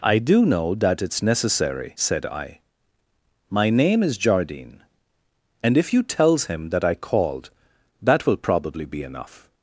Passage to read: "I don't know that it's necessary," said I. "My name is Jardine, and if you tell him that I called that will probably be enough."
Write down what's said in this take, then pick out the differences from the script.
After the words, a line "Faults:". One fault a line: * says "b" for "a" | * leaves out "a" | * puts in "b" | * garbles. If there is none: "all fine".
"I do know that it's necessary," said I. "My name is Jardine, and if you tells him that I called that will probably be enough."
Faults:
* says "do" for "don't"
* says "tells" for "tell"